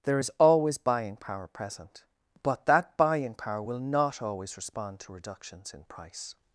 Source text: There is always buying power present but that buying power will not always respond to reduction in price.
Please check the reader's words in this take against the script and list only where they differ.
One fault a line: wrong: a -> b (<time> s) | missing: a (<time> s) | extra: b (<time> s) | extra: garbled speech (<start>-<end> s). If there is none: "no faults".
wrong: reduction -> reductions (5.1 s)